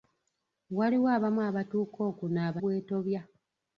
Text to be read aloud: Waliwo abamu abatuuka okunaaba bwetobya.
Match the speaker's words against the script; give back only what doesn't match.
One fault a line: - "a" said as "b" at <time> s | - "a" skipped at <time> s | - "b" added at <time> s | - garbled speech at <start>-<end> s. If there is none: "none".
none